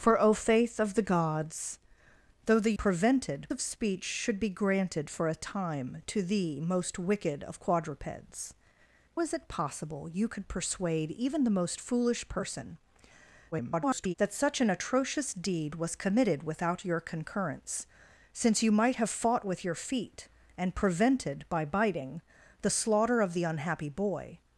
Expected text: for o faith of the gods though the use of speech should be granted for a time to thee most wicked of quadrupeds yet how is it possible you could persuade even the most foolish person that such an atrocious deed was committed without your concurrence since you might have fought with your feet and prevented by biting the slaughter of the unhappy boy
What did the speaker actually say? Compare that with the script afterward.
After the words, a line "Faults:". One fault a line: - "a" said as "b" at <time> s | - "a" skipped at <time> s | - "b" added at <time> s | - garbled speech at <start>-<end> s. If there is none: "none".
for o faith of the gods though the prevented of speech should be granted for a time to thee most wicked of quadrupeds is it possible you could persuade even the most foolish person [garbled] that such an atrocious deed was committed without your concurrence since you might have fought with your feet and prevented by biting the slaughter of the unhappy boy
Faults:
- "use" said as "prevented" at 2.8 s
- "yet how" skipped at 8.5 s
- garbled speech at 13.5-14.1 s